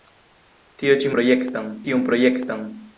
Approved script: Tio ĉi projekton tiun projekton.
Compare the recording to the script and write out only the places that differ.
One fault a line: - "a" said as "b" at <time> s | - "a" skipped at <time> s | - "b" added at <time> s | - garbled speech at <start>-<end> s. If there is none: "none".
none